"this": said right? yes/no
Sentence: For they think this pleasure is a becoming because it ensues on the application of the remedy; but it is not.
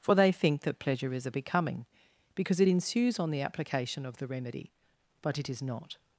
no